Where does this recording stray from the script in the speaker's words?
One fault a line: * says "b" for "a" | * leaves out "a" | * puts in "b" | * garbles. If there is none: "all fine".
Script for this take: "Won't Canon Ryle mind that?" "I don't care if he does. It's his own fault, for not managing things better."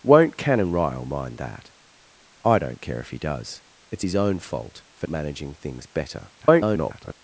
* leaves out "not"
* garbles